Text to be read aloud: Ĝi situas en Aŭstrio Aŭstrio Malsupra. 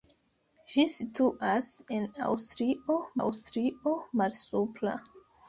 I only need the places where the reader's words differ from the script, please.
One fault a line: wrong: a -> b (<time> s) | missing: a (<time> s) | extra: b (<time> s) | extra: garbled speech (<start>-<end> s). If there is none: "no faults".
no faults